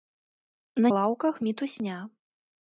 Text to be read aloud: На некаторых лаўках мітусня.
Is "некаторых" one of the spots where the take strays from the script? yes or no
yes